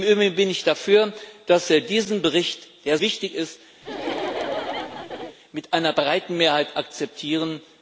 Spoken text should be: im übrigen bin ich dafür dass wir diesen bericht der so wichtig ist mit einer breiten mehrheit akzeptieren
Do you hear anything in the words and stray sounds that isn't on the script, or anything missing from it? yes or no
yes